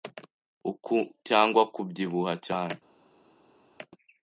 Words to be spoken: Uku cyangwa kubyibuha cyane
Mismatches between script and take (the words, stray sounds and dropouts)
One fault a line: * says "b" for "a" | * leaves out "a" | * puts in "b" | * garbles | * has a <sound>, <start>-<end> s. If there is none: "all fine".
all fine